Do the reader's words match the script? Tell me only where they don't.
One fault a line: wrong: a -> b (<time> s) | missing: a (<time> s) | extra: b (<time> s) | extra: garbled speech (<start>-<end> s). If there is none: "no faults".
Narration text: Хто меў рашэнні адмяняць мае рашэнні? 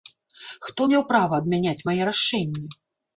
wrong: рашэнні -> права (1.1 s)